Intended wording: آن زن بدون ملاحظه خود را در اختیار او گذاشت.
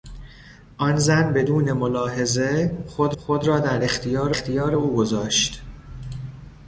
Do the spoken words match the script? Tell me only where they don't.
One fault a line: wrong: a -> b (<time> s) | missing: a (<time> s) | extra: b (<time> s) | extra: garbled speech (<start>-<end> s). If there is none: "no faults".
extra: خود (3.2 s)
extra: اختیار (4.3 s)